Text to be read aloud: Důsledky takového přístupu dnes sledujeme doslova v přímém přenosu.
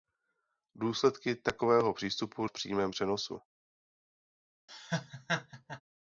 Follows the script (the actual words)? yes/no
no